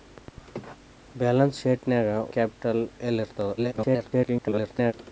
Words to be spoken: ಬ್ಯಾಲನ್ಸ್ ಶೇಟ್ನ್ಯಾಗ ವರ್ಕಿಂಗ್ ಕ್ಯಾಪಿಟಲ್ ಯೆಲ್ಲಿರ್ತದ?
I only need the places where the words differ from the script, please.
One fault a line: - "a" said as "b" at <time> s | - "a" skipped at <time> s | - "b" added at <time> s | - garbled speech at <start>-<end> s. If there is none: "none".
- "ವರ್ಕಿಂಗ್" skipped at 2.1 s
- garbled speech at 3.6-4.9 s